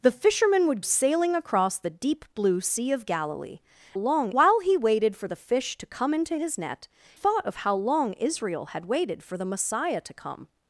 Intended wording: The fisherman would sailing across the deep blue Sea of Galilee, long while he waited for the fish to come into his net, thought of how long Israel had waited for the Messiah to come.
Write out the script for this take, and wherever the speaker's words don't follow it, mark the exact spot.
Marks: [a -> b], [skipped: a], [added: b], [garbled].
The fisherman would sailing across the deep blue Sea of Galilee, long while he waited for the fish to come into his net, thought of how long Israel had waited for the Messiah to come.